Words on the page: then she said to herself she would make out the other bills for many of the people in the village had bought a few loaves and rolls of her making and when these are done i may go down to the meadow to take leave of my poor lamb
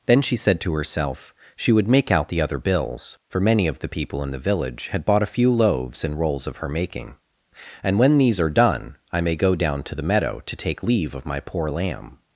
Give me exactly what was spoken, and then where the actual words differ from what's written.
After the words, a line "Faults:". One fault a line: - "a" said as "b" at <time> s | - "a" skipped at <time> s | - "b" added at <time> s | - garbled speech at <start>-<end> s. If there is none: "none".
then she said to herself she would make out the other bills for many of the people in the village had bought a few loaves and rolls of her making and when these are done i may go down to the meadow to take leave of my poor lamb
Faults:
none